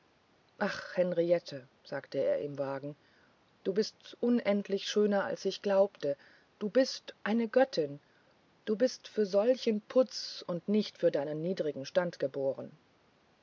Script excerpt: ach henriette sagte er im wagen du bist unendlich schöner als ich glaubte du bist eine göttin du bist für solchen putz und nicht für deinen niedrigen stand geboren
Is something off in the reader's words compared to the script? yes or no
no